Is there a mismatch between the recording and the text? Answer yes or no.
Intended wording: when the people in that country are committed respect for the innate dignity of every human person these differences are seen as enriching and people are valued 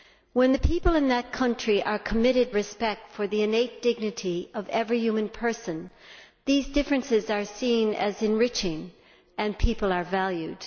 no